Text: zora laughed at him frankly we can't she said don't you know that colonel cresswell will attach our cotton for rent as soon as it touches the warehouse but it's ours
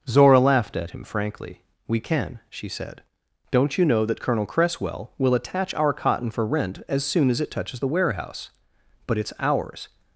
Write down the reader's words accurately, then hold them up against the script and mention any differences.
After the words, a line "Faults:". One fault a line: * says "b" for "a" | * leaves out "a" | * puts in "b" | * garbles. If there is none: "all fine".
zora laughed at him frankly we can she said don't you know that colonel cresswell will attach our cotton for rent as soon as it touches the warehouse but it's ours
Faults:
* says "can" for "can't"